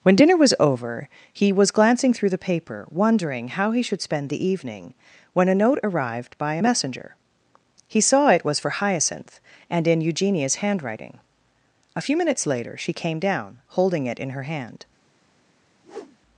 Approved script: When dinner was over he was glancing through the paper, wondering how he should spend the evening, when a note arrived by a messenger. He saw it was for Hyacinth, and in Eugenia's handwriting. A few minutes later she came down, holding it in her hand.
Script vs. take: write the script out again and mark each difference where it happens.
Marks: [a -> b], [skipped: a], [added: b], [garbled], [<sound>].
When dinner was over he was glancing through the paper, wondering how he should spend the evening, when a note arrived by a messenger. He saw it was for Hyacinth, and in Eugenia's handwriting. A few minutes later she came down, holding it in her hand. [whoosh]